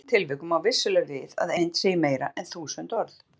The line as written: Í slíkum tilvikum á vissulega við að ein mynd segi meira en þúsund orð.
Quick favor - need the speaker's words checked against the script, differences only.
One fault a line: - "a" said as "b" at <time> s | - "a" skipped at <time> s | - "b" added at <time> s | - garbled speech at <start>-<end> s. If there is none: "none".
- "ein" skipped at 1.5 s